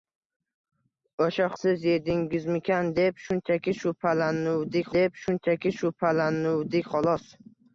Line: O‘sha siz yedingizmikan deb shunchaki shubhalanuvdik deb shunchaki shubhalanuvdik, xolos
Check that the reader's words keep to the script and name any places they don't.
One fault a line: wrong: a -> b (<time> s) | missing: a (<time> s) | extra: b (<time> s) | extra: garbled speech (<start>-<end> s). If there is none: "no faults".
no faults